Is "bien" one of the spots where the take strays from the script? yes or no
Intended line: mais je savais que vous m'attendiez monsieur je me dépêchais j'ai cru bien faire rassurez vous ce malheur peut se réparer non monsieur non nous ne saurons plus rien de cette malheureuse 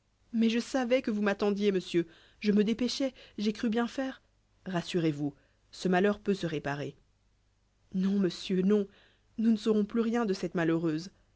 no